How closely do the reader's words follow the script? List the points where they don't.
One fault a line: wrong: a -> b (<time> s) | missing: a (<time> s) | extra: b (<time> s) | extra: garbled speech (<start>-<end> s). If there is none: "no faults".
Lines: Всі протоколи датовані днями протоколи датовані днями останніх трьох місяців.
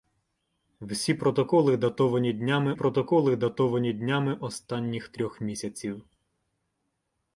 no faults